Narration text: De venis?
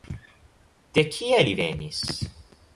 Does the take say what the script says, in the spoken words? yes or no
no